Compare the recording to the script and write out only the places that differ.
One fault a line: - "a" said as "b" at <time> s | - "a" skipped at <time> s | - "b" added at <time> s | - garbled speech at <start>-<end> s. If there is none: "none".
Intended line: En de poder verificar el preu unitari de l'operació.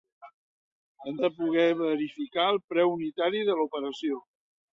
none